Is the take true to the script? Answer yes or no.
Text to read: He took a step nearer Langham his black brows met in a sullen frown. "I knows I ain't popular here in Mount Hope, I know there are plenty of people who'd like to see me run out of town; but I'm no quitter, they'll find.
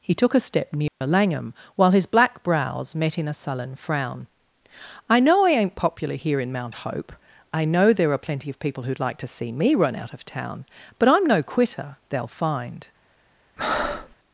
no